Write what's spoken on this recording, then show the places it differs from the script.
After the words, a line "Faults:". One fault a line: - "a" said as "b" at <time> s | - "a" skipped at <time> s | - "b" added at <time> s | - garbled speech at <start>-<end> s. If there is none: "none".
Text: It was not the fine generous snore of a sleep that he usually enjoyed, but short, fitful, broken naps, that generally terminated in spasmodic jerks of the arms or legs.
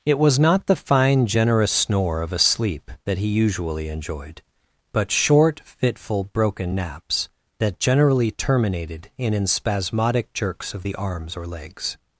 It was not the fine generous snore of a sleep that he usually enjoyed, but short, fitful, broken naps, that generally terminated in in spasmodic jerks of the arms or legs.
Faults:
- "in" added at 9.3 s